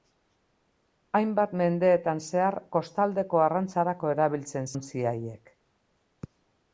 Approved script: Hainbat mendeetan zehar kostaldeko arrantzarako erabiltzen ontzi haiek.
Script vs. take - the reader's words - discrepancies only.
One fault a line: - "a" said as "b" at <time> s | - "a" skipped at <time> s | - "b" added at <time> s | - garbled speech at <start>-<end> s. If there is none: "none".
none